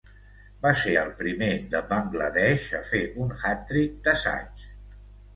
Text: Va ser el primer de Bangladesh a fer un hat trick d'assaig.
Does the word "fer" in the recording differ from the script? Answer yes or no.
no